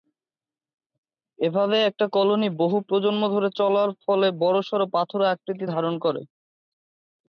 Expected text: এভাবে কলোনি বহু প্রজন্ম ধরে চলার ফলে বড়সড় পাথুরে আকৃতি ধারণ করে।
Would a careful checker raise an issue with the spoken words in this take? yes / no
yes